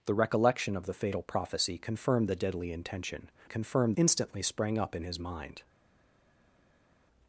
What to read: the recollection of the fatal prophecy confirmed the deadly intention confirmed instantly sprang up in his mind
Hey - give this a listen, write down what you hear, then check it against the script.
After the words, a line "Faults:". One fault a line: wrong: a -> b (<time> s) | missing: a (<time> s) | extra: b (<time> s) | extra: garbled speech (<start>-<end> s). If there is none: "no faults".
the recollection of the fatal prophecy confirmed the deadly intention confirmed instantly sprang up in his mind
Faults:
no faults